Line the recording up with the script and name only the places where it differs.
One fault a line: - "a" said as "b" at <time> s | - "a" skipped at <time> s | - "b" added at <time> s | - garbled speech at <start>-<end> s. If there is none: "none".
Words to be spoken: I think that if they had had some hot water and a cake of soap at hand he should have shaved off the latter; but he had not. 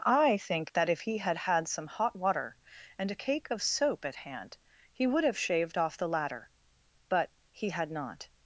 - "they" said as "he" at 1.0 s
- "should" said as "would" at 5.0 s